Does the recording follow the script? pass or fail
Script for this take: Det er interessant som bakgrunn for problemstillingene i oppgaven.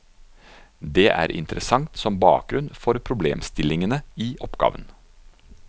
pass